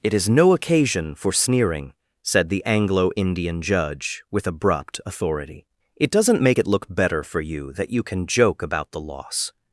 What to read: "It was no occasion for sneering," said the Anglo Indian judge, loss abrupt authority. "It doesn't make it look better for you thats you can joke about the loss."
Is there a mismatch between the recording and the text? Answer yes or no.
yes